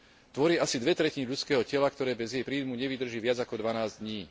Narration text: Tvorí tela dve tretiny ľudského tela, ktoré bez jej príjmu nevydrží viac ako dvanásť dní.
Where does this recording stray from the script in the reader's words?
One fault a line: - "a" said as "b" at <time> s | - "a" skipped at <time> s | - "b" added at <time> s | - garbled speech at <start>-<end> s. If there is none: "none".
- "tela" said as "asi" at 0.6 s